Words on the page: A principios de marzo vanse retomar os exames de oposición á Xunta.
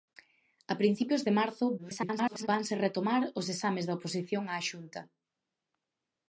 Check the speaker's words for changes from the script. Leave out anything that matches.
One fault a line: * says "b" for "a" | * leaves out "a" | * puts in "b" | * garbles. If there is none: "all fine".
* garbles